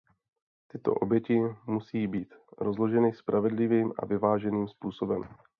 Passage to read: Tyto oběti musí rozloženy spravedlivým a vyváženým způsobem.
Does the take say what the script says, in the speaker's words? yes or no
no